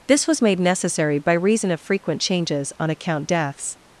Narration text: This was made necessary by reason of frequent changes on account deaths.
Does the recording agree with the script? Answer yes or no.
yes